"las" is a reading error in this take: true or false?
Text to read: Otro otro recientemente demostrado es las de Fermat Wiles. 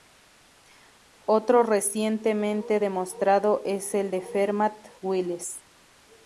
true